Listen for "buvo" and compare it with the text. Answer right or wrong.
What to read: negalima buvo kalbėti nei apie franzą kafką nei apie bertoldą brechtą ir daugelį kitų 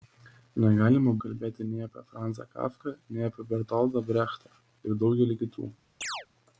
wrong